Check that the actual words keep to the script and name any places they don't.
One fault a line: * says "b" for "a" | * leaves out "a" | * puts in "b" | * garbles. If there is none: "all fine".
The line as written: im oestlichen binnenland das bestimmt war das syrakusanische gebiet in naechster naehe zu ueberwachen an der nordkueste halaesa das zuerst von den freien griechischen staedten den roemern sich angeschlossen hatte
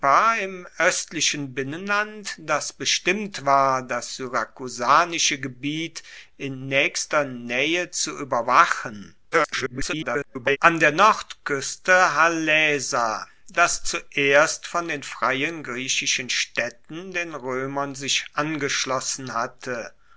* garbles